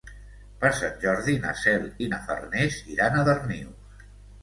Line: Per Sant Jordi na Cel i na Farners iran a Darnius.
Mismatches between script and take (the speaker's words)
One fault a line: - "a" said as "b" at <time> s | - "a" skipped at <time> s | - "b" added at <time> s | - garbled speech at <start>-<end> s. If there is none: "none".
none